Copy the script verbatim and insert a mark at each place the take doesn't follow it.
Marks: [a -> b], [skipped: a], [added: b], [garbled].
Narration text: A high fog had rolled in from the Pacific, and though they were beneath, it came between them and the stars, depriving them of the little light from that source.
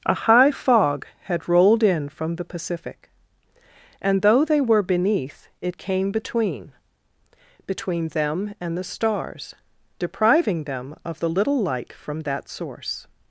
A high fog had rolled in from the Pacific, and though they were beneath, it came between [added: between] them and the stars, depriving them of the little light from that source.